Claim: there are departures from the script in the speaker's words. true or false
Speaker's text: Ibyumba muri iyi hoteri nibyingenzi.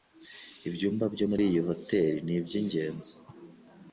true